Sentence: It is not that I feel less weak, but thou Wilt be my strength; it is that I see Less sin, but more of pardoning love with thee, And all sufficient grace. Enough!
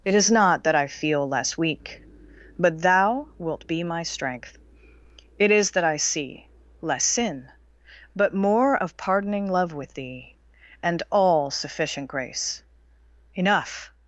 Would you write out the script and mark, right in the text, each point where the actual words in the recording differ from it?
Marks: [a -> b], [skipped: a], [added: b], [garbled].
It is not that I feel less weak, but thou Wilt be my strength; it is that I see Less sin, but more of pardoning love with thee, And all sufficient grace. Enough!